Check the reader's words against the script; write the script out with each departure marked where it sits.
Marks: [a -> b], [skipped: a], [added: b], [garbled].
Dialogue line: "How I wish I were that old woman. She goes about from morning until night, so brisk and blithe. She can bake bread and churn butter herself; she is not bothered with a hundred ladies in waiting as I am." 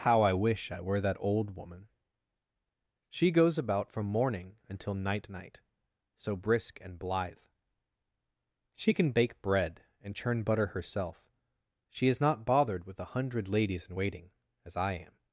"How I wish I were that old woman. She goes about from morning until night, [added: night] so brisk and blithe. She can bake bread and churn butter herself; she is not bothered with a hundred ladies in waiting as I am."